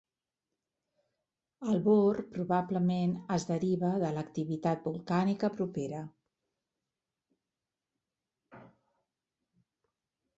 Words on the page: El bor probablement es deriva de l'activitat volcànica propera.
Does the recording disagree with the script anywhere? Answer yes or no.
no